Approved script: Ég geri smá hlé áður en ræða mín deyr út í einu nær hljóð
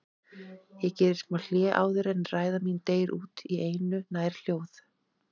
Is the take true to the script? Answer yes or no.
yes